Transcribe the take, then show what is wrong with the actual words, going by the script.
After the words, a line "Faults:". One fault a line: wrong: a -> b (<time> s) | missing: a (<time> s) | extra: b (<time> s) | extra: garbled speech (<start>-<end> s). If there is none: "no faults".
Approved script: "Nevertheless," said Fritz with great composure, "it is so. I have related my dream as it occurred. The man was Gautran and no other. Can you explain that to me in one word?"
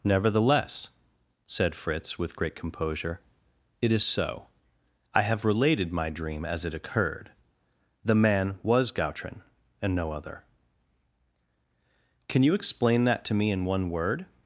"Nevertheless," said Fritz with great composure, "it is so. I have related my dream as it occurred. The man was Gautran and no other. Can you explain that to me in one word?"
Faults:
no faults